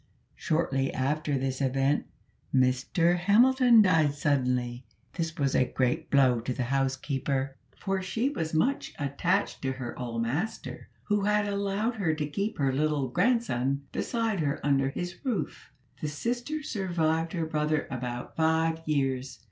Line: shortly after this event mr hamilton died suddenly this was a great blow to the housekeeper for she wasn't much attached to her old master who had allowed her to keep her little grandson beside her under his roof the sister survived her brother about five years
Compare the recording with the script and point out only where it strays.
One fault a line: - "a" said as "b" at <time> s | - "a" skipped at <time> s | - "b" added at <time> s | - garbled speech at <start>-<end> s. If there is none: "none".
- "wasn't" said as "was" at 8.3 s